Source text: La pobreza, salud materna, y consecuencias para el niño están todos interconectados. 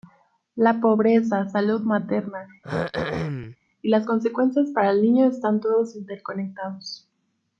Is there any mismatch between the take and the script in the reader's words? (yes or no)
yes